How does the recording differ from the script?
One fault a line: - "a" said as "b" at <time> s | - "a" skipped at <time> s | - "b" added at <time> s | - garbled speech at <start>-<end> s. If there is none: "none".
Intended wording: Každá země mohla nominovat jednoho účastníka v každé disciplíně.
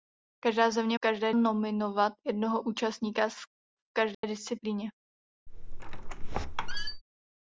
- "mohla" said as "každé" at 1.0 s